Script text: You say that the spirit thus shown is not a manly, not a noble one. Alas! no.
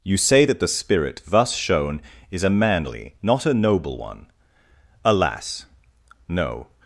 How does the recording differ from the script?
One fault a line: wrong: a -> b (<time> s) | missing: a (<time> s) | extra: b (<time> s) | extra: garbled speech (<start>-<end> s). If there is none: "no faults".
missing: not (2.4 s)